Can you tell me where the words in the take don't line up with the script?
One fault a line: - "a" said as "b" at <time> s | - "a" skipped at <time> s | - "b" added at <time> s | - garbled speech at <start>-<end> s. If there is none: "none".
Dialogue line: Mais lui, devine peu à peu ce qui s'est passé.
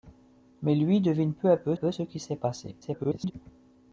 - "peu" added at 1.7 s
- garbled speech at 2.8-3.3 s